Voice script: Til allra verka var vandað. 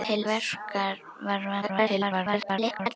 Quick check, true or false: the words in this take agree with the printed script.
false